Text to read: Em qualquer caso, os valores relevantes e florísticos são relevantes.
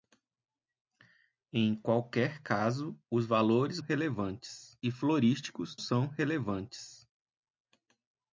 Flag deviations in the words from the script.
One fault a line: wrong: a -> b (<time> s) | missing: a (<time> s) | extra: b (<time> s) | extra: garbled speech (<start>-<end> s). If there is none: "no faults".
no faults